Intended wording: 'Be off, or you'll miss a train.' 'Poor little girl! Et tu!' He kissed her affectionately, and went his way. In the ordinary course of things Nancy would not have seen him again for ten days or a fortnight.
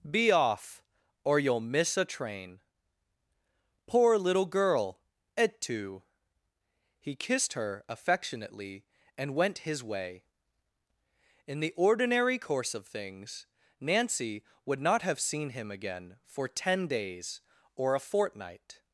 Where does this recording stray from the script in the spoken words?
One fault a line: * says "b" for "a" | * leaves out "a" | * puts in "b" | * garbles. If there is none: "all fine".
all fine